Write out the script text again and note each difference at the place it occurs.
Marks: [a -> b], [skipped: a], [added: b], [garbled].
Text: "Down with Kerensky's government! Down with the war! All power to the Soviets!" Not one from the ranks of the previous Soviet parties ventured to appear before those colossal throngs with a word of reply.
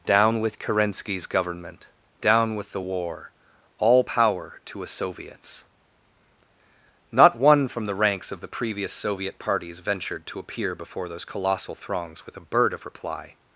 "Down with Kerensky's government! Down with the war! All power to [the -> a] Soviets!" Not one from the ranks of the previous Soviet parties ventured to appear before those colossal throngs with a [word -> bird] of reply.